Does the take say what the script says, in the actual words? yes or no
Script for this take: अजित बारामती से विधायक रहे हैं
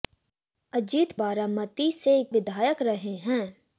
yes